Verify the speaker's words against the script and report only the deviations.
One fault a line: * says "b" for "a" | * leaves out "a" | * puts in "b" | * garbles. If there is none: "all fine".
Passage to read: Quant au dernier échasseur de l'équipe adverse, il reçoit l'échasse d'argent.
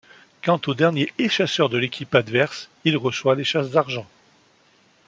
all fine